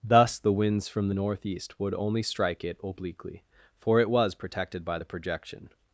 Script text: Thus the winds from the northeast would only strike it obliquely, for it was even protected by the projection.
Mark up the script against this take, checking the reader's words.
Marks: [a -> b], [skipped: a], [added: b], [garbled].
Thus the winds from the northeast would only strike it obliquely, for it was [skipped: even] protected by the projection.